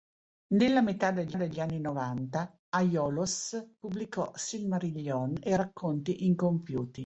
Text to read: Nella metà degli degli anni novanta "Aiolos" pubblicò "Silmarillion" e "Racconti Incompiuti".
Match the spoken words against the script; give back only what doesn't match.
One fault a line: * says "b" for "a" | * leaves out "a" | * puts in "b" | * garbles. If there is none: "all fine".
all fine